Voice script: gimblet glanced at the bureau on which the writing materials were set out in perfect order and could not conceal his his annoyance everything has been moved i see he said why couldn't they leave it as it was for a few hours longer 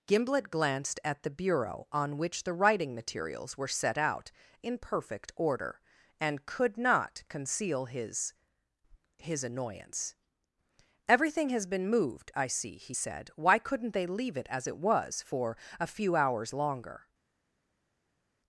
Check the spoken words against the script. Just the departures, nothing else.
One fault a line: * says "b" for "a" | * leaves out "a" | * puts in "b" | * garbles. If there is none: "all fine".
all fine